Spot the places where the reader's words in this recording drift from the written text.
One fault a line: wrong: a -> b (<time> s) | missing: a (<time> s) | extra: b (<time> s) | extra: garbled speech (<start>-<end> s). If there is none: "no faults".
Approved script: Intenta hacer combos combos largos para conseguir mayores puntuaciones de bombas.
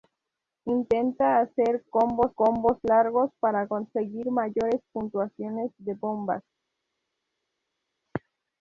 no faults